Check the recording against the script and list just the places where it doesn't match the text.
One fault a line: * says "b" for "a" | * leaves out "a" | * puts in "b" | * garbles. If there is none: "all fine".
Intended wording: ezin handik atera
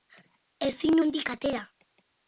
all fine